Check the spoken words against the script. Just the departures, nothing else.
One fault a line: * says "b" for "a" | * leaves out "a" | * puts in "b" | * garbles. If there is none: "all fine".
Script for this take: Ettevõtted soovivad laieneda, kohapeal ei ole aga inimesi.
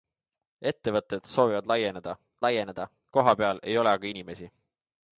* puts in "laieneda"